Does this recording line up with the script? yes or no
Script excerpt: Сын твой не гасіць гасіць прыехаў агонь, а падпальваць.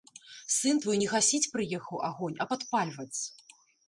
no